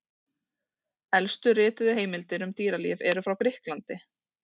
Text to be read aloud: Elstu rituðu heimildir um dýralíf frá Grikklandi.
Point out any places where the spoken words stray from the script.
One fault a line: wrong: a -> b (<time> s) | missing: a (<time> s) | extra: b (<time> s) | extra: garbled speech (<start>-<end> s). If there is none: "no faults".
extra: eru (3.1 s)